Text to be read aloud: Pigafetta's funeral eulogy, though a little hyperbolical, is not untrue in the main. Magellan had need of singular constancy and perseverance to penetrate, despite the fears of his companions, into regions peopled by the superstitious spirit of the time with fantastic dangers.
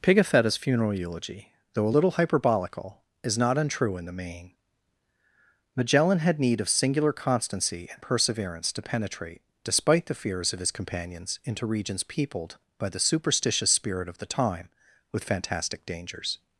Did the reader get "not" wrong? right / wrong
right